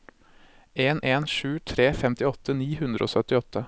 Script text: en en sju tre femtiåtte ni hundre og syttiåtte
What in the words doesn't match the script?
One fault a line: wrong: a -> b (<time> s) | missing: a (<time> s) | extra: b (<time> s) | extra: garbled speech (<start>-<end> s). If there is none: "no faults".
no faults